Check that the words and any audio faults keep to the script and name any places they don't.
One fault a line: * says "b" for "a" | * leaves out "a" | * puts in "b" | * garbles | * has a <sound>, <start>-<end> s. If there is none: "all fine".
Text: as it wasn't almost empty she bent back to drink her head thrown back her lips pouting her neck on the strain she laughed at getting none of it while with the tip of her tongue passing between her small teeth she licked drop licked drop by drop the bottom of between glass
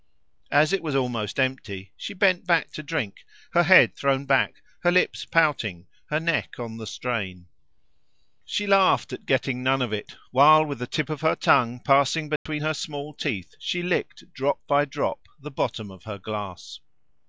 * says "was" for "wasn't"
* has a dropout, 12.4-12.5 s
* leaves out "licked drop"
* says "her" for "between"